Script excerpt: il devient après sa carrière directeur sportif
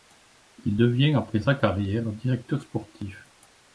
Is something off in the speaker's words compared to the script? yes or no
no